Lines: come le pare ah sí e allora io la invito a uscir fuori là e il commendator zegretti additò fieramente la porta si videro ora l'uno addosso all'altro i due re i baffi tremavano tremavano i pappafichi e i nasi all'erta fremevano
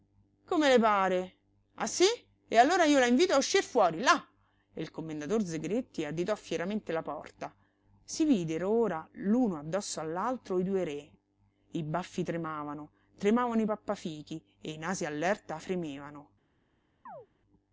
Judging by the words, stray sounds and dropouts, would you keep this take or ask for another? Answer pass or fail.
fail